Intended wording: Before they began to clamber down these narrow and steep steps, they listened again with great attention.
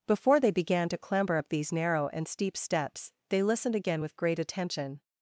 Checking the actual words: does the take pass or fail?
fail